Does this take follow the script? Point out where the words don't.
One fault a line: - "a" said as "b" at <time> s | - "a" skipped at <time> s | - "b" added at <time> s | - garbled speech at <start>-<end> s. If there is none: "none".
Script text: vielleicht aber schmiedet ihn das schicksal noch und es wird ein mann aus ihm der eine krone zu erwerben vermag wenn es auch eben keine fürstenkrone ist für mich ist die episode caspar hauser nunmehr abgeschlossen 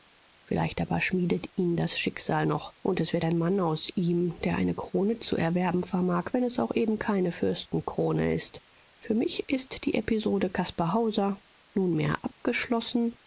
none